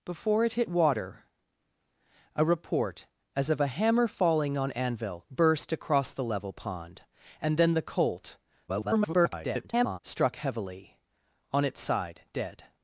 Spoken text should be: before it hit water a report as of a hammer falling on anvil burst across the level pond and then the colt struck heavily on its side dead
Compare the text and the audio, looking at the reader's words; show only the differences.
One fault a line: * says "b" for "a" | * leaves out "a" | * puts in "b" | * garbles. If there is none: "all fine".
* garbles